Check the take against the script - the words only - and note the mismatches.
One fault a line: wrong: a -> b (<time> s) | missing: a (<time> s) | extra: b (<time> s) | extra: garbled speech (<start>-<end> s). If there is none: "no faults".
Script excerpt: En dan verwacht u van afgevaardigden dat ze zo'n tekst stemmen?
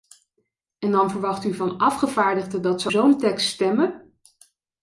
no faults